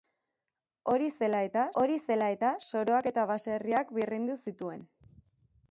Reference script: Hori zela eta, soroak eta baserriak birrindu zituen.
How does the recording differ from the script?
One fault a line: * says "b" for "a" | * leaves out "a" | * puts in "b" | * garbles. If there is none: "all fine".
* puts in "hori zela eta"